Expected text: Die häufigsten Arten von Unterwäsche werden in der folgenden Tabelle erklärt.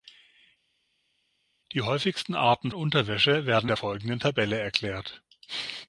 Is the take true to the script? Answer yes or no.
no